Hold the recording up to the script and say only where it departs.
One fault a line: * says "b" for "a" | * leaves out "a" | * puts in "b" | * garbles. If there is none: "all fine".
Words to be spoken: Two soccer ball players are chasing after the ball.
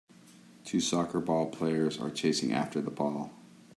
all fine